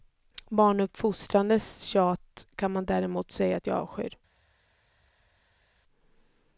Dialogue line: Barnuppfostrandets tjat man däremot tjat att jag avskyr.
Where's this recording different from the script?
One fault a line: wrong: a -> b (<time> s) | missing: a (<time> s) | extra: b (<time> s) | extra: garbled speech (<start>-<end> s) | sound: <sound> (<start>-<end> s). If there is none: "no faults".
extra: kan (2.6 s)
wrong: tjat -> säga (3.3 s)